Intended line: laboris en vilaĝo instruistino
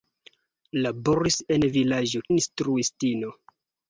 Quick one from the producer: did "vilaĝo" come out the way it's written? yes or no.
yes